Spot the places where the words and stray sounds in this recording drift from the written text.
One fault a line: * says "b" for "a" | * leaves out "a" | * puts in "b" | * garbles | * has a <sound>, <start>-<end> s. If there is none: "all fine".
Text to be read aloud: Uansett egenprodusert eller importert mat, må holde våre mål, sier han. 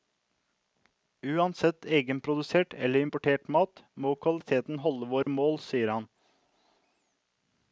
* puts in "kvaliteten"
* has a dropout, 5.2-5.3 s